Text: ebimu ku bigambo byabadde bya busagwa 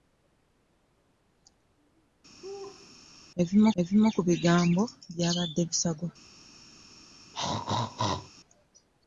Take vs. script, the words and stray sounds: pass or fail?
fail